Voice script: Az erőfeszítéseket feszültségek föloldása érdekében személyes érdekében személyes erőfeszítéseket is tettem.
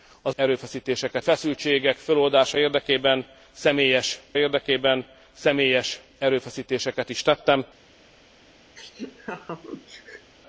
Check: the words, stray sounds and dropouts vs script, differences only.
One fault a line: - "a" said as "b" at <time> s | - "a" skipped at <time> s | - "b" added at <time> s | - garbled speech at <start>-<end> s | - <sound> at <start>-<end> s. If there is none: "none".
- laugh at 8.8-10.3 s